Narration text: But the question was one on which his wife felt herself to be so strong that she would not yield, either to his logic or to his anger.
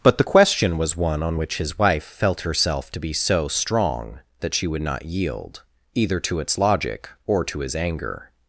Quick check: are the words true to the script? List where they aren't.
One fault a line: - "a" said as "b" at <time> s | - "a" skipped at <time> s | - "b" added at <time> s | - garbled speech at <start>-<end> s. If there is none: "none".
- "his" said as "its" at 6.4 s